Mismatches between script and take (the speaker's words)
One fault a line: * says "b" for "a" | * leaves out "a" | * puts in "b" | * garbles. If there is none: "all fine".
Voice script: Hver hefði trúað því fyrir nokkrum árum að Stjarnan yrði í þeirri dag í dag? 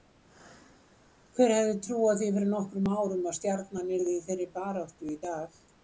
* says "baráttu" for "dag"